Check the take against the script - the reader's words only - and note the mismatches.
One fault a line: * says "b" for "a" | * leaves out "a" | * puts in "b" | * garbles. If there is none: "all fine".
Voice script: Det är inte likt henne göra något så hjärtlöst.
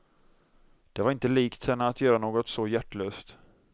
* says "var" for "är"
* puts in "att"